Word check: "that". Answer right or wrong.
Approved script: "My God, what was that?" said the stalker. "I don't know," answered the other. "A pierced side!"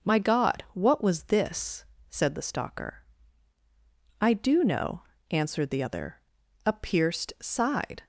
wrong